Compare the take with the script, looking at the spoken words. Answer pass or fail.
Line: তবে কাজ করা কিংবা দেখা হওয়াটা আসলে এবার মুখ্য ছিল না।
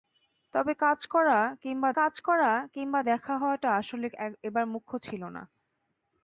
fail